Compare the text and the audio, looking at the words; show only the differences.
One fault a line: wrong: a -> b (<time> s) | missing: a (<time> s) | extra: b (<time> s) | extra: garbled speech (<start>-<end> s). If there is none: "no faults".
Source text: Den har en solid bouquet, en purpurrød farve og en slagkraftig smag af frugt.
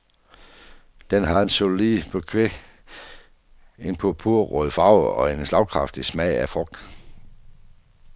no faults